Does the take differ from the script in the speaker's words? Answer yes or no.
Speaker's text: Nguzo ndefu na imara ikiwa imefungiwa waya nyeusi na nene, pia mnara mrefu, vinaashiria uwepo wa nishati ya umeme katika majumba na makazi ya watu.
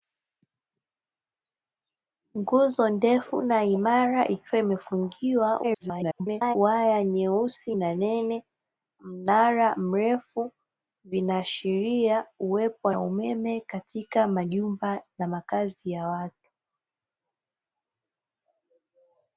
yes